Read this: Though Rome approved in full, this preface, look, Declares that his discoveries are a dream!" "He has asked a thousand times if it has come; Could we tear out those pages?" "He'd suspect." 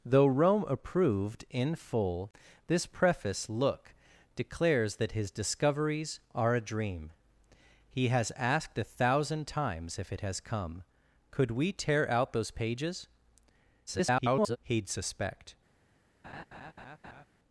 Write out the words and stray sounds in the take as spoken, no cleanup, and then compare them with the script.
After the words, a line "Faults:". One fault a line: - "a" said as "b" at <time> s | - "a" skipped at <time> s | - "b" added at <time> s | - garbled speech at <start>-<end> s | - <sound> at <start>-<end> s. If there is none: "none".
Though Rome approved in full, this preface, look, Declares that his discoveries are a dream!" "He has asked a thousand times if it has come; Could we tear out those pages?" [garbled] "He'd suspect."
Faults:
- garbled speech at 13.9-14.6 s
- laugh at 16.2-17.3 s